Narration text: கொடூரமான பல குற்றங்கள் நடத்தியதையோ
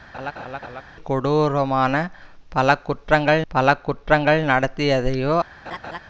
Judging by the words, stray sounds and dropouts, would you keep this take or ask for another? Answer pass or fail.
fail